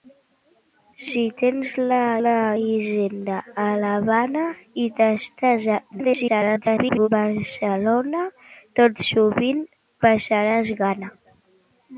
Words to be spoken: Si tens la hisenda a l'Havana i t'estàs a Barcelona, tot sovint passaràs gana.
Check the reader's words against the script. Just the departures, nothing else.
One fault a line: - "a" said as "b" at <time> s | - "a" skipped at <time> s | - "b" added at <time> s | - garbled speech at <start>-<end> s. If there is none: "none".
- "la" added at 2.2 s
- garbled speech at 5.9-7.1 s